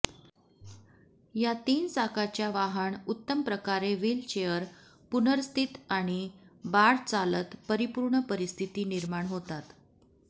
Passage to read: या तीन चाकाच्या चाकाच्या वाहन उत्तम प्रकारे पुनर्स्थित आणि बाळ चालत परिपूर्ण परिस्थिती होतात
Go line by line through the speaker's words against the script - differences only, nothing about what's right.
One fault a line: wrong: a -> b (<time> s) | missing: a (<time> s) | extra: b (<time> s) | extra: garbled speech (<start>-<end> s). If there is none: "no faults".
missing: चाकाच्या (2.5 s)
extra: व्हीलचेअर (3.9 s)
extra: निर्माण (8.9 s)